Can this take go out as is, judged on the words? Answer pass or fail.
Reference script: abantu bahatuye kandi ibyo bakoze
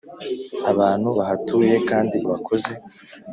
fail